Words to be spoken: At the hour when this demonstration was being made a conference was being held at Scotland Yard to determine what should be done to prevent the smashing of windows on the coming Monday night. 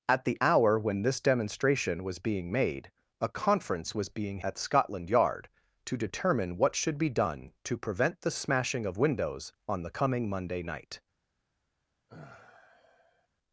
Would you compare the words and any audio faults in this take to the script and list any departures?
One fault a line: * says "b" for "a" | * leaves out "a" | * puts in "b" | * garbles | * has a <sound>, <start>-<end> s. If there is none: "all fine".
* leaves out "held"
* has a sigh, 12.1-13.3 s